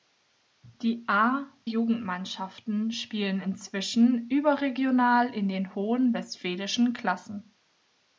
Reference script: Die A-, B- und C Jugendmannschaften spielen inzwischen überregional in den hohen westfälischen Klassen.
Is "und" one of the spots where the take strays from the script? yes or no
yes